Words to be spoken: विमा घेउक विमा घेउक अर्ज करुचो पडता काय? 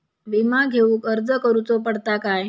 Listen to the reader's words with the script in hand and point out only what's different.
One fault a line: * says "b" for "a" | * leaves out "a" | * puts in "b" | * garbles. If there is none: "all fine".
* leaves out "विमा घेउक"